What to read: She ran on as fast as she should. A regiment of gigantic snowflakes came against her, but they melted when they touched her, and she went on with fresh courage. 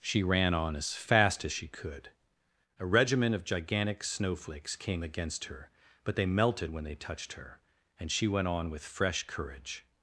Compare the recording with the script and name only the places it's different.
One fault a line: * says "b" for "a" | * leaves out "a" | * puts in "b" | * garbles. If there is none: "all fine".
* says "could" for "should"